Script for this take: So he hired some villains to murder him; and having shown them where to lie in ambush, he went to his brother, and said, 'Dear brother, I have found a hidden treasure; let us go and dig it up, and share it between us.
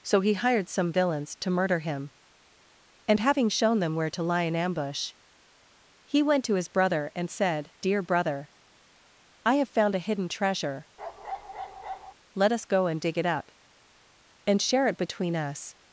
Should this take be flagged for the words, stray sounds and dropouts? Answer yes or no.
yes